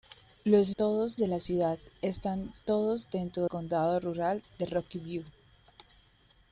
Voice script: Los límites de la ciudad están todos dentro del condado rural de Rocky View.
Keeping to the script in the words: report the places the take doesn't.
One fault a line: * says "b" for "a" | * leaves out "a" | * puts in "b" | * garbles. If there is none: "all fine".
* says "todos" for "límites"
* leaves out "del"